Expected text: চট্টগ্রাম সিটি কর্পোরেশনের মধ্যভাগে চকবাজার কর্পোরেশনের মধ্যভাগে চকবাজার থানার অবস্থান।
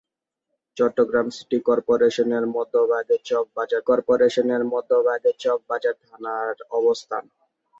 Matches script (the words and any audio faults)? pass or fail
pass